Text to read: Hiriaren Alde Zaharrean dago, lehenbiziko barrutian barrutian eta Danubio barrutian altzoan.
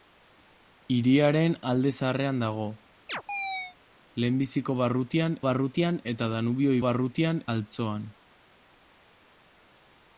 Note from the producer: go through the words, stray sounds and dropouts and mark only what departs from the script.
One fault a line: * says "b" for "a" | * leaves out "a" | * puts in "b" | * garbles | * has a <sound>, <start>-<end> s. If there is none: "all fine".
* has a chirp, 3.1-3.8 s